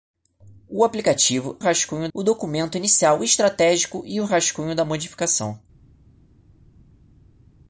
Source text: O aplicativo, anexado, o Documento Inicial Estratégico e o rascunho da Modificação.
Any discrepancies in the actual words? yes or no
yes